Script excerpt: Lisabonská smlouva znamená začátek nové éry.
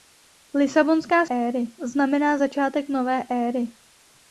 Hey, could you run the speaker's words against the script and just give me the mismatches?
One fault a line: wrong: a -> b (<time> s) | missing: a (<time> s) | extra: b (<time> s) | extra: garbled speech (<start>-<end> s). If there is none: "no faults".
wrong: smlouva -> éry (1.3 s)